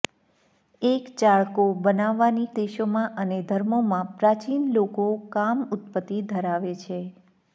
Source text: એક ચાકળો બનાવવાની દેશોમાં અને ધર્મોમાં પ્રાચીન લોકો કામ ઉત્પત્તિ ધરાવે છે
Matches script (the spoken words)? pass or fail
pass